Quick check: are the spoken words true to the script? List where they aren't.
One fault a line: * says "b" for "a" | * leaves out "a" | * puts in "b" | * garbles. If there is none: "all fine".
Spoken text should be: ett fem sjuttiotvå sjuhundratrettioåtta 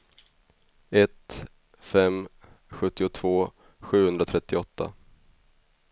all fine